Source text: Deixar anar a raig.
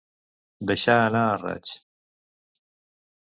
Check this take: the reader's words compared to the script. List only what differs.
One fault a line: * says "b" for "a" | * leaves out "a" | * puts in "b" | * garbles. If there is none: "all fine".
all fine